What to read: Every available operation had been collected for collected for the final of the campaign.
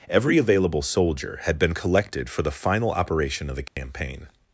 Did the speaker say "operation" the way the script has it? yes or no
no